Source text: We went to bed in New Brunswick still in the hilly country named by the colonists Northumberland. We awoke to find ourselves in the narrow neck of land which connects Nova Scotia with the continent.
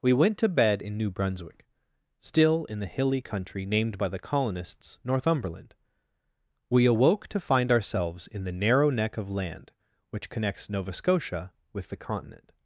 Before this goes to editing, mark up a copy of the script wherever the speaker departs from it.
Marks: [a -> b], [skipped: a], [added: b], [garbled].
We went to bed in New Brunswick still in the hilly country named by the colonists Northumberland. We awoke to find ourselves in the narrow neck of land which connects Nova Scotia with the continent.